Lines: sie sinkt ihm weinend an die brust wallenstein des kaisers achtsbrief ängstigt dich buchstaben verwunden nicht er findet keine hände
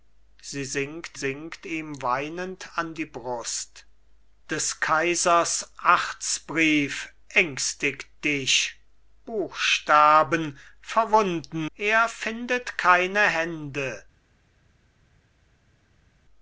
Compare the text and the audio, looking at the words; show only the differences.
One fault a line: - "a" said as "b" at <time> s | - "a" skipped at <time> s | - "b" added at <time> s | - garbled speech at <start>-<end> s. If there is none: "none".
- "sinkt" added at 1.1 s
- "wallenstein" skipped at 3.8 s
- "nicht" skipped at 11.7 s